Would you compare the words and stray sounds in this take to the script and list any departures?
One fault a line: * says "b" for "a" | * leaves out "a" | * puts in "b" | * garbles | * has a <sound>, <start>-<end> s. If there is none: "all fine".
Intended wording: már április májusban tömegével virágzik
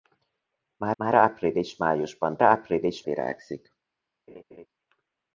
* puts in "már"
* says "április" for "tömegével"
* has a laugh, 4.3-4.7 s